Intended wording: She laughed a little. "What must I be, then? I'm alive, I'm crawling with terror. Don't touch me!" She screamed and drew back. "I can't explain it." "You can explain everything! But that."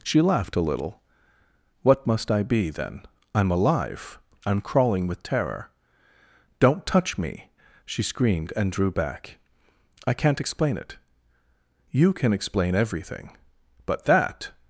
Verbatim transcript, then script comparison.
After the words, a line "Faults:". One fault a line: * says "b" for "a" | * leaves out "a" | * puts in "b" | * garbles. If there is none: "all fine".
She laughed a little. "What must I be, then? I'm alive, I'm crawling with terror. Don't touch me!" She screamed and drew back. "I can't explain it." "You can explain everything! But that."
Faults:
all fine